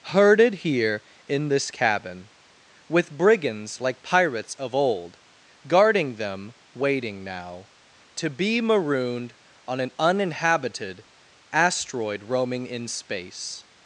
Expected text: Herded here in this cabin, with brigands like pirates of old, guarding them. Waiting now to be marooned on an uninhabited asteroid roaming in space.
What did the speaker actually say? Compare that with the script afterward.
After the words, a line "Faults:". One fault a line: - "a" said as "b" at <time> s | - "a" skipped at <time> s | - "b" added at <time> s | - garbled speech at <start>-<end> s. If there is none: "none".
Herded here in this cabin, with brigands like pirates of old, guarding them. Waiting now to be marooned on an uninhabited asteroid roaming in space.
Faults:
none